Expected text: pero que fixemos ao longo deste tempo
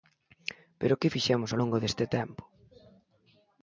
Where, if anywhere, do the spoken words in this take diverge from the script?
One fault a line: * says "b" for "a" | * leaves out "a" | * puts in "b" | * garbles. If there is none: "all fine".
all fine